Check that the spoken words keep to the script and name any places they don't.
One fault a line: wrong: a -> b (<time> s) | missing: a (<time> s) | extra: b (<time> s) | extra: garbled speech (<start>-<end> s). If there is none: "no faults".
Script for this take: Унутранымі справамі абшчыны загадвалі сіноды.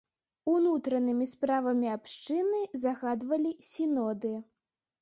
no faults